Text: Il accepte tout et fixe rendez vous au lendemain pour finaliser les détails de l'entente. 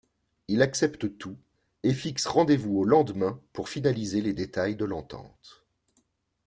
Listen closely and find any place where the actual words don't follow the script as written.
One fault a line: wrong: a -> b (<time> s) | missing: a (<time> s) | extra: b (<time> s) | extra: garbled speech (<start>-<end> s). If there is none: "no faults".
no faults